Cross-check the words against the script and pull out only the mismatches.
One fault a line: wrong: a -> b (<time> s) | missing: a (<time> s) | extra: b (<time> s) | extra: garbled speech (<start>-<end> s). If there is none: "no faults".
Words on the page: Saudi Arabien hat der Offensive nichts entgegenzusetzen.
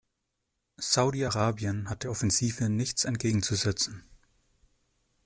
no faults